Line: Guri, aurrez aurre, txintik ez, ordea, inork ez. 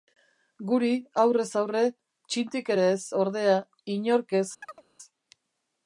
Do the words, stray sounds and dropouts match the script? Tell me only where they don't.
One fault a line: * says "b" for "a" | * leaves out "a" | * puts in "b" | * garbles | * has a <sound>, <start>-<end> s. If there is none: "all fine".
* puts in "ere"
* has a chirp, 4.6-4.8 s